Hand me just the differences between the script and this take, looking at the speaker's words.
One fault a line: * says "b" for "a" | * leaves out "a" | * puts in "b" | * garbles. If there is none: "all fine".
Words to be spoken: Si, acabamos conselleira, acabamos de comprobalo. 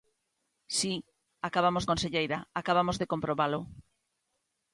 all fine